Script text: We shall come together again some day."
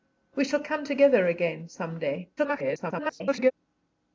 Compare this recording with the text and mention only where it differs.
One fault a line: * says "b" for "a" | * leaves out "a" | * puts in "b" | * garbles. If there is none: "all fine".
* garbles